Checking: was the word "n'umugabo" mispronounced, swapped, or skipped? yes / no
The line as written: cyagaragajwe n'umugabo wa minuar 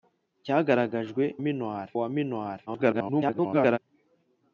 yes